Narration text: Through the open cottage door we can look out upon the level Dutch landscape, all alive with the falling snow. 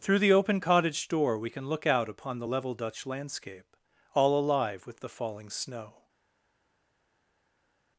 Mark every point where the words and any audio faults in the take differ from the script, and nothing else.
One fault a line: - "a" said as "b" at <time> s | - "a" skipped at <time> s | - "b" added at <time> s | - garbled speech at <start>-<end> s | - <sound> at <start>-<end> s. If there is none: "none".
none